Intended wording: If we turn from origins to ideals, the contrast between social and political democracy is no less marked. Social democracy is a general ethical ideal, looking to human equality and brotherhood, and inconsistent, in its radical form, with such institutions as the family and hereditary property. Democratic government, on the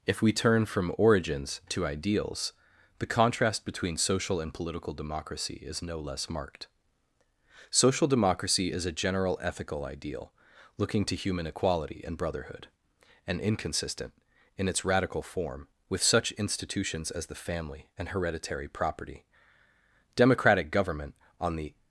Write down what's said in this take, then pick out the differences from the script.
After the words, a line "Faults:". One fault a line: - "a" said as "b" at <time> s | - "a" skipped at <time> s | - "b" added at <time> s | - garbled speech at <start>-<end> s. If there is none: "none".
If we turn from origins to ideals, the contrast between social and political democracy is no less marked. Social democracy is a general ethical ideal, looking to human equality and brotherhood, and inconsistent, in its radical form, with such institutions as the family and hereditary property. Democratic government, on the
Faults:
none